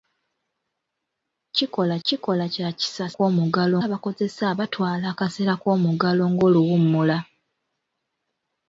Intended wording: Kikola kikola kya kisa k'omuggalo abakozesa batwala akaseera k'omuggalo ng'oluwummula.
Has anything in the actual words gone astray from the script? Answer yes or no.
no